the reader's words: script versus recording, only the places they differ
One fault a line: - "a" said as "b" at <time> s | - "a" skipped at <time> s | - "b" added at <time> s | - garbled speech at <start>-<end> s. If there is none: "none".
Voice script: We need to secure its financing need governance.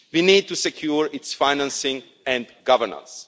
- "need" said as "and" at 2.2 s